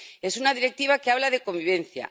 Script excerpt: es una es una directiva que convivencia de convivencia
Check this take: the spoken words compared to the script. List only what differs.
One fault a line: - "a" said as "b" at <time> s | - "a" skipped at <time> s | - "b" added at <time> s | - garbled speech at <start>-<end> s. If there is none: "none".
- "es una" skipped at 0.5 s
- "convivencia" said as "habla" at 1.1 s